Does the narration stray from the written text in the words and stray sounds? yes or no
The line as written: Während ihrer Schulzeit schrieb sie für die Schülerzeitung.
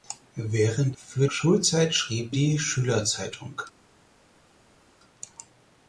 yes